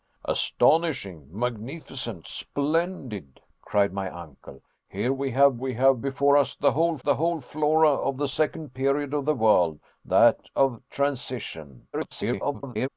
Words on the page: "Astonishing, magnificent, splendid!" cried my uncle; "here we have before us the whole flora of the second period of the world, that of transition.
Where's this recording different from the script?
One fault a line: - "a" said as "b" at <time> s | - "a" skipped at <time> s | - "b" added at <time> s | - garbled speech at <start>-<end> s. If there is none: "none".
- "we have" added at 5.6 s
- "the whole" added at 7.0 s
- garbled speech at 11.9-12.9 s